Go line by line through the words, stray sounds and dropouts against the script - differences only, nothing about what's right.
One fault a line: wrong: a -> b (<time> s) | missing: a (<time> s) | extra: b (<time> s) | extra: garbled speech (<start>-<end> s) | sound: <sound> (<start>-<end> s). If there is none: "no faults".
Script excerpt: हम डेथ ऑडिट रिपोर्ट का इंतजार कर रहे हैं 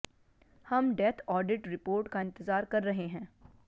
no faults